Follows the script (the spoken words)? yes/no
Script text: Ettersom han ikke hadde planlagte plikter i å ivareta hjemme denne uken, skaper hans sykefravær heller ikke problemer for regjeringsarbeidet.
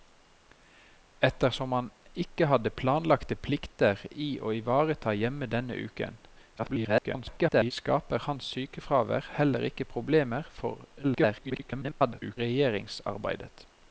no